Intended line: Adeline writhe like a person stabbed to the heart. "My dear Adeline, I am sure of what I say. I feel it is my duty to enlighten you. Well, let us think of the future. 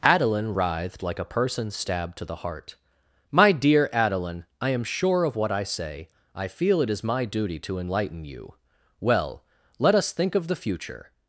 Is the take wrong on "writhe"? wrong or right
wrong